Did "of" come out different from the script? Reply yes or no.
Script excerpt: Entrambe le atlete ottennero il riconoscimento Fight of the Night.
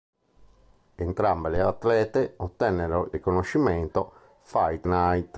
yes